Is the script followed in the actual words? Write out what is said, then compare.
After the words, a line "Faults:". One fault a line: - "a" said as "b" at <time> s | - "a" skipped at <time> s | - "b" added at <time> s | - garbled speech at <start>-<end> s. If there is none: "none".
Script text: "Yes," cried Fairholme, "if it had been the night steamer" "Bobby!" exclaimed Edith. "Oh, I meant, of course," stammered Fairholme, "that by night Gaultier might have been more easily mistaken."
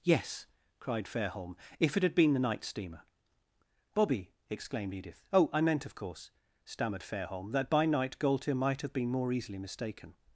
"Yes," cried Fairholme, "if it had been the night steamer" "Bobby!" exclaimed Edith. "Oh, I meant, of course," stammered Fairholme, "that by night Gaultier might have been more easily mistaken."
Faults:
none